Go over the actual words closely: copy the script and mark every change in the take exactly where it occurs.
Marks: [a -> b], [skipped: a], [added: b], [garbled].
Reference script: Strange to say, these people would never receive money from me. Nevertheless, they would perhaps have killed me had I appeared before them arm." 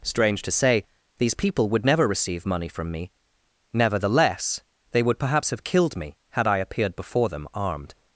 Strange to say, these people would never receive money from me. Nevertheless, they would perhaps have killed me had I appeared before them [arm." -> armed]